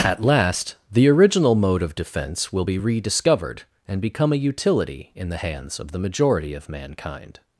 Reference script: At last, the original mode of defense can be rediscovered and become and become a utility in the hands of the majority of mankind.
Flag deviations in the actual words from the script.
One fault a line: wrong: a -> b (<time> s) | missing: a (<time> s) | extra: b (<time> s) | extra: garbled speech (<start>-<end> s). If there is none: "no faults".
wrong: can -> will (2.5 s)
missing: and become (4.3 s)